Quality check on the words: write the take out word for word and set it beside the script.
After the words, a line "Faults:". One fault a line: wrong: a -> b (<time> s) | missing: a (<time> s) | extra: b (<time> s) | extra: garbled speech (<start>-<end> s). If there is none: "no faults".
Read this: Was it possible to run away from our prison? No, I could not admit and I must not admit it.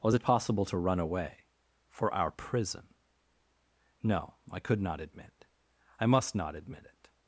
Was it possible to run away for our prison? No, I could not admit I must not admit it.
Faults:
wrong: from -> for (1.9 s)
missing: and (5.5 s)